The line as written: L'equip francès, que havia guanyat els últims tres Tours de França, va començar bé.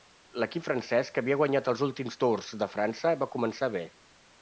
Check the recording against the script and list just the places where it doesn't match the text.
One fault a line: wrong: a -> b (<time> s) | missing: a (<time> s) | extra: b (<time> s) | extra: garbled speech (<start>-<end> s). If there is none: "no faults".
missing: tres (2.2 s)